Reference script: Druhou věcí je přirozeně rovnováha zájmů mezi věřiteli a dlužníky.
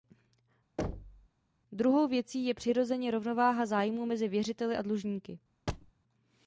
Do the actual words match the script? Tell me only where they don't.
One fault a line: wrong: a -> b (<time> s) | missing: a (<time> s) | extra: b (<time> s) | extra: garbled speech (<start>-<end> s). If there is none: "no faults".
no faults